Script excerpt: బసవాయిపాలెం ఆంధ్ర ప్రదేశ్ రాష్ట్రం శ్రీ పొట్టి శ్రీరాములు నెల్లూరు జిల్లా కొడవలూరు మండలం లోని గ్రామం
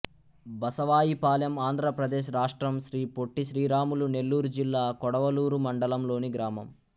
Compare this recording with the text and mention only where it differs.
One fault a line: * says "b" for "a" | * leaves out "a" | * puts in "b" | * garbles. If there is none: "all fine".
all fine